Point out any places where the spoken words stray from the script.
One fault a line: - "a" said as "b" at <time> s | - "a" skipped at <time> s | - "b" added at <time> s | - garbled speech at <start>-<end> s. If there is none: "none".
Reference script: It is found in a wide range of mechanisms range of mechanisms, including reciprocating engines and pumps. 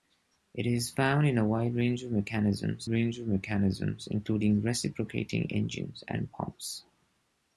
none